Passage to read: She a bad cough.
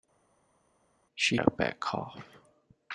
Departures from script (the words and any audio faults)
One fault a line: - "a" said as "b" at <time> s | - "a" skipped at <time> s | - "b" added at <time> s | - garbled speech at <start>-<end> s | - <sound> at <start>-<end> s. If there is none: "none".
none